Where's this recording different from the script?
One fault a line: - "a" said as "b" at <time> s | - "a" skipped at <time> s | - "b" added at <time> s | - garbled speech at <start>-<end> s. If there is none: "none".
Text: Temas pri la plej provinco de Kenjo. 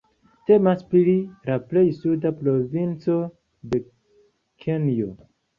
- "suda" added at 2.0 s